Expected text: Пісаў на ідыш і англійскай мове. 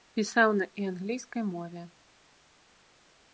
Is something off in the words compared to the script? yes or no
yes